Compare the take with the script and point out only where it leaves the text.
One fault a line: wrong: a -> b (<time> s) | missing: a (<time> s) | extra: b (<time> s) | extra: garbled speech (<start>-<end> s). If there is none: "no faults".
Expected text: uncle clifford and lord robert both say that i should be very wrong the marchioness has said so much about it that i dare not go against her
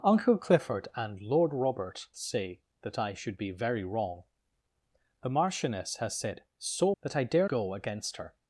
missing: both (2.1 s)
missing: much about it (6.9 s)
missing: not (7.5 s)